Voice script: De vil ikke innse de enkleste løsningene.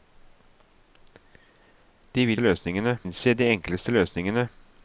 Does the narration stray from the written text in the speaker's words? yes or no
yes